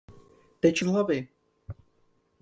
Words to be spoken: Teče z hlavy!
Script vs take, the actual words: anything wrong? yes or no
no